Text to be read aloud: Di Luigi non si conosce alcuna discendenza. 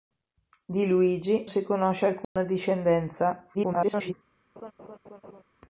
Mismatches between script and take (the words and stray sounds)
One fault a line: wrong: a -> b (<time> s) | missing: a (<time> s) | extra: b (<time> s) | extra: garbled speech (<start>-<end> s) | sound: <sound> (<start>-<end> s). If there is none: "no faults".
missing: non (1.5 s)
sound: dropout (2.2-2.4 s)
extra: garbled speech (3.5-4.1 s)
sound: laugh (4.6-5.4 s)